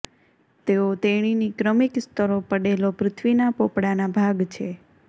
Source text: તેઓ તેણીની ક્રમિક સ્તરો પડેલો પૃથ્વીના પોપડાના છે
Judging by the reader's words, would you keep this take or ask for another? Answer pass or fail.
fail